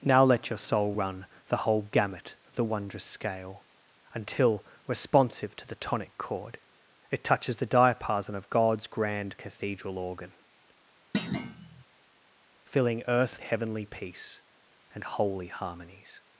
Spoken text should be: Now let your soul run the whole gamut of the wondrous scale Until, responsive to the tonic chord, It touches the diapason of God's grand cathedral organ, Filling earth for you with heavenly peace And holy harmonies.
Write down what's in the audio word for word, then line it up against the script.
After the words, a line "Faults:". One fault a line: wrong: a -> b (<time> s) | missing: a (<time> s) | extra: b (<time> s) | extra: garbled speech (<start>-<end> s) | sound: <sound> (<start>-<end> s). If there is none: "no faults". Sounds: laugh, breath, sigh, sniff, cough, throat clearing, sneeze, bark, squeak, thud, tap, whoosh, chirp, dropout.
Now let your soul run the whole gamut of the wondrous scale Until, responsive to the tonic chord, It touches the diapason of God's grand cathedral organ, Filling earth heavenly peace And holy harmonies.
Faults:
sound: thud (11.1-11.8 s)
missing: for you with (13.4 s)